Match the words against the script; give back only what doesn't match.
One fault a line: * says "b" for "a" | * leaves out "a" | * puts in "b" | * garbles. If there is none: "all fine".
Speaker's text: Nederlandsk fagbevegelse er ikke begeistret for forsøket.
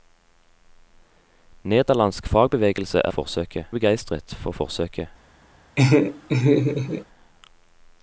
* says "forsøket" for "ikke"